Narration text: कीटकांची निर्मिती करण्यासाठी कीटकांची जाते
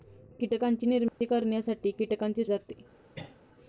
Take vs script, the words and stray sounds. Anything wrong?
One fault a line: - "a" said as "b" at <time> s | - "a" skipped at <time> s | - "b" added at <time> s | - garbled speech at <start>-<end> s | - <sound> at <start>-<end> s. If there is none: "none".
- dropout at 1.1-1.2 s
- cough at 3.1-3.4 s